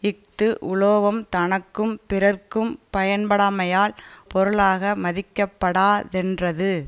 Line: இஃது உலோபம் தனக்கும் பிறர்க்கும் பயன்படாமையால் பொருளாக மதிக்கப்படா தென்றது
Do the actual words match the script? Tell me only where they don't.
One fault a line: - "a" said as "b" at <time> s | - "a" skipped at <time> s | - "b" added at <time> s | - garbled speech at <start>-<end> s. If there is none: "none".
none